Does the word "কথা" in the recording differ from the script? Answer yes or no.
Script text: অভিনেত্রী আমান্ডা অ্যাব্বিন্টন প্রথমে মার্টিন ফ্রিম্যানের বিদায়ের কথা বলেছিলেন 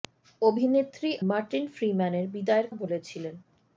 yes